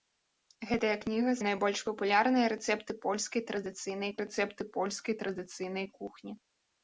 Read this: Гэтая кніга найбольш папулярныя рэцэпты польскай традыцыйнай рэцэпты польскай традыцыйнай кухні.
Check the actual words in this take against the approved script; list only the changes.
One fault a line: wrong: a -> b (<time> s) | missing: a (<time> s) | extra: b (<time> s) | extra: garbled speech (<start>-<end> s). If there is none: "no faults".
no faults